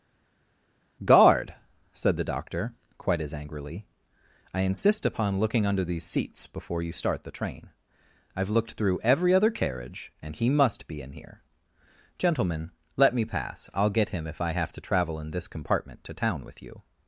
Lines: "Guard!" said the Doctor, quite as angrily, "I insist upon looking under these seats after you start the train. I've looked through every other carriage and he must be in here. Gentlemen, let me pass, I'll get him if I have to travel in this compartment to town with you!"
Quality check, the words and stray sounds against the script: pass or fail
fail